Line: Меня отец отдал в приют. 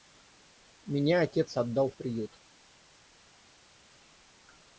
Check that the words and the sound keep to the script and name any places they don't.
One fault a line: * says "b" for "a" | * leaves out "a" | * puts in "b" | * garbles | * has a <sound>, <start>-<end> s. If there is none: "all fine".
all fine